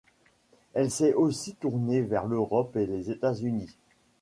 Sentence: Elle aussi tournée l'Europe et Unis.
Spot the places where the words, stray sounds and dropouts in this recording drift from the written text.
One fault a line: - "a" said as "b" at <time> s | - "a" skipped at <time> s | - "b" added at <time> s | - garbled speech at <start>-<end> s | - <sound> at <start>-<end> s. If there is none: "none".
- "s'est" added at 0.9 s
- "vers" added at 2.0 s
- "les États" added at 2.9 s